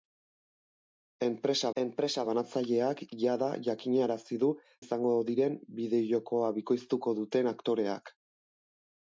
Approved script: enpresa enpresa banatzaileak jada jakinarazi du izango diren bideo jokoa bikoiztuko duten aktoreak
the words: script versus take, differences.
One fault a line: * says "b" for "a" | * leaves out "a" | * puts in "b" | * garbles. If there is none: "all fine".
all fine